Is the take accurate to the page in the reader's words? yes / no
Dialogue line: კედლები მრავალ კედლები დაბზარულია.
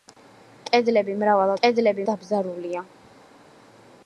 yes